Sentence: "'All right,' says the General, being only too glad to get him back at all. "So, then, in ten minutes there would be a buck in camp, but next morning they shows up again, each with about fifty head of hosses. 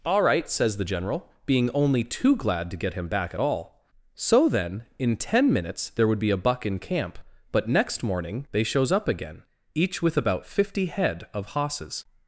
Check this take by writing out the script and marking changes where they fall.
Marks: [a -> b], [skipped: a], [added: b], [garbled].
"'All right,' says the General, being only too glad to get him back at all. "So, then, in ten minutes there would be a buck in camp, but next morning they shows up again, each with about fifty head of hosses.